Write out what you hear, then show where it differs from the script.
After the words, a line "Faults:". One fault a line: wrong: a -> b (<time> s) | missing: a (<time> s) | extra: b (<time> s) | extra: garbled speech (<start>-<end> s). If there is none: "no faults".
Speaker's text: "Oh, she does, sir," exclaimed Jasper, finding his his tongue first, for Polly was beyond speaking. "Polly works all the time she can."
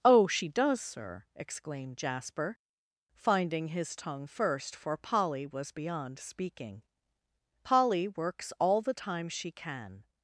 "Oh, she does, sir," exclaimed Jasper, finding his tongue first, for Polly was beyond speaking. "Polly works all the time she can."
Faults:
missing: his (4.0 s)